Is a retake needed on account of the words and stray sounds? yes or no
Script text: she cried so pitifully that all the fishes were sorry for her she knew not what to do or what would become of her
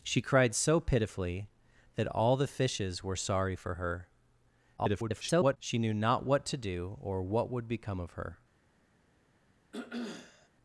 yes